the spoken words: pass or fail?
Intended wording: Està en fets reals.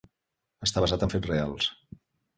fail